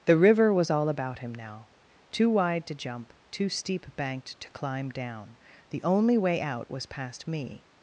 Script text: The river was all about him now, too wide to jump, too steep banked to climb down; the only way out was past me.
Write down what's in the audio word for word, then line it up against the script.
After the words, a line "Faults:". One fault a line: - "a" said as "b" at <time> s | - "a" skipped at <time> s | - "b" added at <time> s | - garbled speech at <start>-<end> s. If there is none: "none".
The river was all about him now, too wide to jump, too steep banked to climb down; the only way out was past me.
Faults:
none